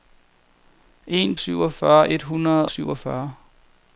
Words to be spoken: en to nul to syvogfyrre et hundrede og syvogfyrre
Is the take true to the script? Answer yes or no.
no